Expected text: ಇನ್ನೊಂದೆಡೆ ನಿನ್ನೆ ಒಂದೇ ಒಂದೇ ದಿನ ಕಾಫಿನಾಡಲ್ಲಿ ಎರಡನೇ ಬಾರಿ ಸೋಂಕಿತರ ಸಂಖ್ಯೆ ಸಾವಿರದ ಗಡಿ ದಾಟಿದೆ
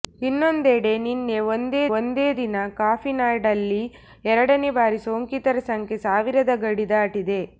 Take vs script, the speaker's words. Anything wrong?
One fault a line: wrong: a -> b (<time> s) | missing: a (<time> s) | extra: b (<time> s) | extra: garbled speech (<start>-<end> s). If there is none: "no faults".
no faults